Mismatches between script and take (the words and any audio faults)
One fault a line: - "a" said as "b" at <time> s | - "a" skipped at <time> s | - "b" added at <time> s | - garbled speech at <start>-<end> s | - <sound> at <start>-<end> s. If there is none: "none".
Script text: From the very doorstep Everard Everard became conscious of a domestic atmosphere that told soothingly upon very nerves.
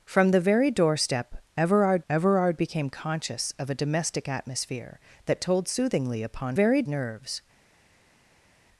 none